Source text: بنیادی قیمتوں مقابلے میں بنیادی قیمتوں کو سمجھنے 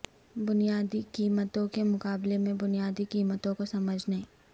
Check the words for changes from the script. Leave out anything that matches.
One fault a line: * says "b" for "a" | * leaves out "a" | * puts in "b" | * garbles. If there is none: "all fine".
* puts in "کے"